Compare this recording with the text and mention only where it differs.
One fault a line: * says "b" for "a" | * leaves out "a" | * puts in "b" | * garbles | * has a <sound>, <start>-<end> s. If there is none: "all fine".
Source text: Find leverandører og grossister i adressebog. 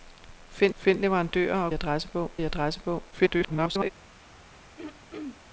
* puts in "find"
* says "adressebog" for "grossister"
* garbles
* has a throat clearing, 4.8-5.4 s